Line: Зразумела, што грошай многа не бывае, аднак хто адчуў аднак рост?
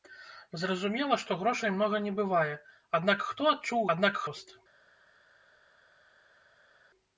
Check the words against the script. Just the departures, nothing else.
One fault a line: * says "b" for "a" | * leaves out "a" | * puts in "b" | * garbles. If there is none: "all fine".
all fine